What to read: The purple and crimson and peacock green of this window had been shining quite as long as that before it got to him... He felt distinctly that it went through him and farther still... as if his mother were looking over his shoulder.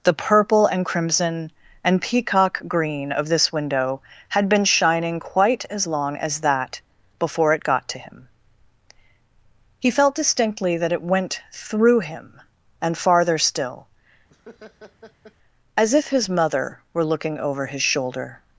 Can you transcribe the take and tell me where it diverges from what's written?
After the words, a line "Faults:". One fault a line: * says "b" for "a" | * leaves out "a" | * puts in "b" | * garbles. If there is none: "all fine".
The purple and crimson and peacock green of this window had been shining quite as long as that before it got to him... He felt distinctly that it went through him and farther still... as if his mother were looking over his shoulder.
Faults:
all fine